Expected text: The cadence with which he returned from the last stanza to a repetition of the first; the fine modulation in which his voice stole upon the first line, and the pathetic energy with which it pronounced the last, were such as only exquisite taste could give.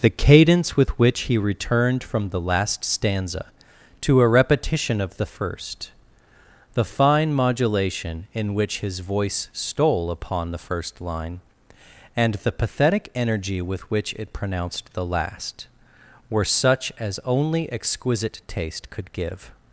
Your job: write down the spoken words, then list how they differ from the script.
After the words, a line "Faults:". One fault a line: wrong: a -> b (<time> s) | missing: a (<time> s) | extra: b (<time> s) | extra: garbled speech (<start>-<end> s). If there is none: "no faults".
The cadence with which he returned from the last stanza to a repetition of the first; the fine modulation in which his voice stole upon the first line, and the pathetic energy with which it pronounced the last, were such as only exquisite taste could give.
Faults:
no faults